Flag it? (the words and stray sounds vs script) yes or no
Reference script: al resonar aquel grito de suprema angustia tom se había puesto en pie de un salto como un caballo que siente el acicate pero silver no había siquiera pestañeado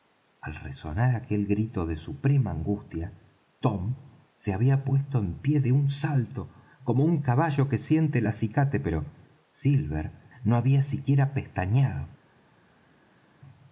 no